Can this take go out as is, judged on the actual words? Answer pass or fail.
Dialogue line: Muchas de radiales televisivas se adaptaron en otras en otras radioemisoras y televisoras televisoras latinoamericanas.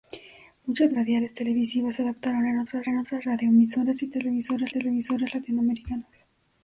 pass